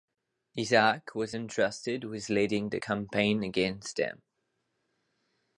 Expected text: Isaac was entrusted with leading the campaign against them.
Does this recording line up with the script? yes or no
yes